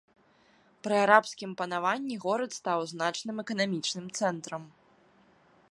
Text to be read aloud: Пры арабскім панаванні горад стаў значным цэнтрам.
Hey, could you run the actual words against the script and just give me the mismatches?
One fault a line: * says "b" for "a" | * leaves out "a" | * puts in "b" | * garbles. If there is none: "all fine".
* puts in "эканамічным"